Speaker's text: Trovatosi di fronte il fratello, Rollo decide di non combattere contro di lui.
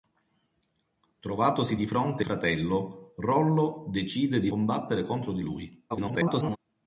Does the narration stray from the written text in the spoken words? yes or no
yes